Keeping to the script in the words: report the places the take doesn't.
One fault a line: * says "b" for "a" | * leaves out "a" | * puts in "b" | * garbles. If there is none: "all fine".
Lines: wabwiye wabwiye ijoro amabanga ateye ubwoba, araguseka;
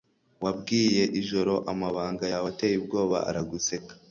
* leaves out "wabwiye"
* puts in "yawe"